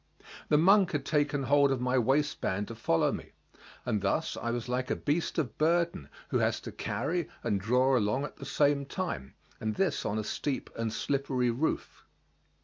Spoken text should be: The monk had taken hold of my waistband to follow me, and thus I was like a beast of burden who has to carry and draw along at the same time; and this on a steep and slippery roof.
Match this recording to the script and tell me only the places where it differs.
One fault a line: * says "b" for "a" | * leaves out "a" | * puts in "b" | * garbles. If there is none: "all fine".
all fine